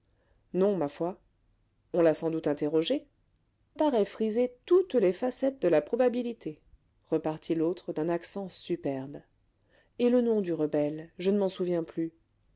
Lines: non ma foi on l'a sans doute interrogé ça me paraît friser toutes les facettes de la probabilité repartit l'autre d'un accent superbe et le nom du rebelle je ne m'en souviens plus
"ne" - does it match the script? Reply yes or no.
yes